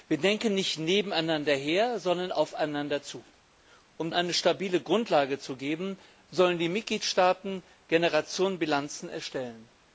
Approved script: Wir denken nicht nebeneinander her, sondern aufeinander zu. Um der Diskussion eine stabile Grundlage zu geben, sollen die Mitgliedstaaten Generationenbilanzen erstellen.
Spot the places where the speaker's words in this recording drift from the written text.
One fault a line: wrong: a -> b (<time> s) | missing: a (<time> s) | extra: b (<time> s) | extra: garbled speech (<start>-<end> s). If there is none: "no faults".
missing: der Diskussion (4.1 s)